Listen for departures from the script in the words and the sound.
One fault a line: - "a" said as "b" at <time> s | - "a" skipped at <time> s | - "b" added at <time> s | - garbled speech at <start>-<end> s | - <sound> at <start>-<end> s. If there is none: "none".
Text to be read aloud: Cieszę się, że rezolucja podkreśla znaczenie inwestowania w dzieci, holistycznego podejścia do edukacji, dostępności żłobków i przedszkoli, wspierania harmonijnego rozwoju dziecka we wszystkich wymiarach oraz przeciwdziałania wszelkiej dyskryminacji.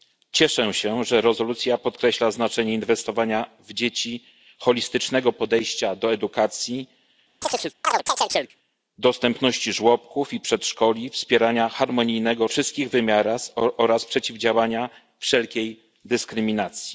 - chirp at 7.4-8.6 s
- "rozwoju dziecka we" skipped at 12.5 s